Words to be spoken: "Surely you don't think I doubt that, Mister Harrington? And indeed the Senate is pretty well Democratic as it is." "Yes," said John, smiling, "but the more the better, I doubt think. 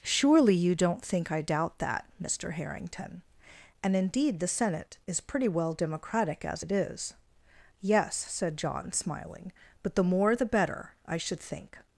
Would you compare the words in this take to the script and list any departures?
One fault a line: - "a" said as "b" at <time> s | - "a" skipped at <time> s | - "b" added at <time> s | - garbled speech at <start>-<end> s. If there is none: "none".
- "doubt" said as "should" at 11.2 s